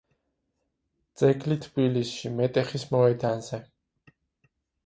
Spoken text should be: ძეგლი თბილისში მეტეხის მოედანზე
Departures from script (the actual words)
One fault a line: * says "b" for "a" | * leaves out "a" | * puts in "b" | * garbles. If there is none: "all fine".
all fine